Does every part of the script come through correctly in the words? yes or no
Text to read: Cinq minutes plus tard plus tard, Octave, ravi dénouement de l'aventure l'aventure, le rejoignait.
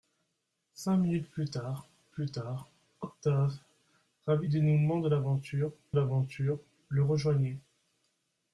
yes